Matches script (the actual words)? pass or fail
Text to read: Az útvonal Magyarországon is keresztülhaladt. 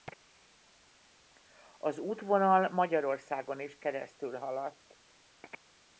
pass